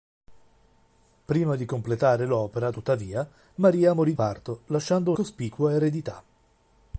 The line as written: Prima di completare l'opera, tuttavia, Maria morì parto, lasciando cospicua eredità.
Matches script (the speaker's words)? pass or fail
pass